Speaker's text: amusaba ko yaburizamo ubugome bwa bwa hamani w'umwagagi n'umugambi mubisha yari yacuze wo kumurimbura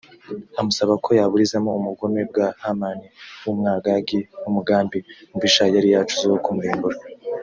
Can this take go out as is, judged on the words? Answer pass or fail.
fail